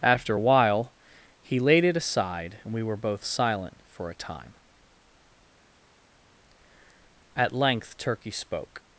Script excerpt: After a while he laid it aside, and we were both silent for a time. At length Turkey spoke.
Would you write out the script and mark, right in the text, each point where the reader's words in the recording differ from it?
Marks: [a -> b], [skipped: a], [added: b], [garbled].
After a while he laid it aside, and we were both silent for a time. At length Turkey spoke.